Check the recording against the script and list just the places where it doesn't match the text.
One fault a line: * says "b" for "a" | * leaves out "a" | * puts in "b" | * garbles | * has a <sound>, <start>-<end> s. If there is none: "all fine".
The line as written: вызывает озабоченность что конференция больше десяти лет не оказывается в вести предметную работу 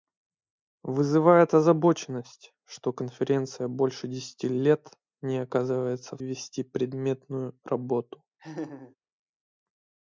* has a laugh, 8.4-9.0 s